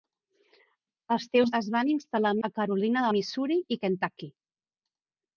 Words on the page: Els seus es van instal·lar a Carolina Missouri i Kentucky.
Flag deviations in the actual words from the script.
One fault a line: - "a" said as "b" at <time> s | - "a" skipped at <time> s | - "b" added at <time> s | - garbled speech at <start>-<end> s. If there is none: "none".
none